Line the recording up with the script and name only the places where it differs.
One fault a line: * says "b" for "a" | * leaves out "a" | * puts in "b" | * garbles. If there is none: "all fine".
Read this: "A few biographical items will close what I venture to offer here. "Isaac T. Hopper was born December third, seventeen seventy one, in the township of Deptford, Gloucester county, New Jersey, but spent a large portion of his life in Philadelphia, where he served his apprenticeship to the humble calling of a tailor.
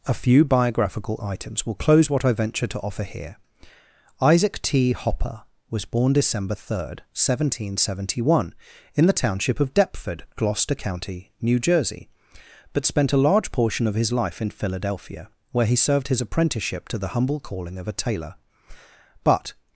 * puts in "But"